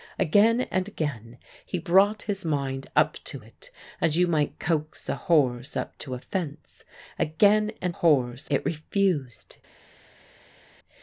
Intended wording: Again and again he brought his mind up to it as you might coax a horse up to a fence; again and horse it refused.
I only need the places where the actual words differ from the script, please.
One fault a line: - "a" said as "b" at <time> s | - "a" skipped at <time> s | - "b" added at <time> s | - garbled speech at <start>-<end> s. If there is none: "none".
none